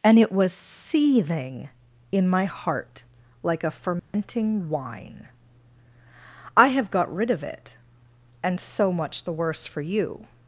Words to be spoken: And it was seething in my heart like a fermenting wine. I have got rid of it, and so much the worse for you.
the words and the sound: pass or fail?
fail